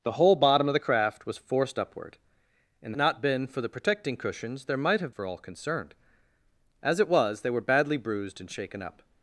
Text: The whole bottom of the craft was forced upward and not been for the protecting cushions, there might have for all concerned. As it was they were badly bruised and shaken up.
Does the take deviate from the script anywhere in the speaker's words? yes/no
no